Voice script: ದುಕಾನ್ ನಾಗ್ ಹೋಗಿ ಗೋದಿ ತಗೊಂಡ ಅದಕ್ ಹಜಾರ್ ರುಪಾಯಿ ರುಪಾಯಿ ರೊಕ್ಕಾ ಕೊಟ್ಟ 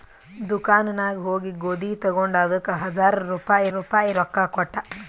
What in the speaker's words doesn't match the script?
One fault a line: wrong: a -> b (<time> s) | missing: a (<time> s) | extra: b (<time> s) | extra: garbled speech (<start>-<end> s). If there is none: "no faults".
no faults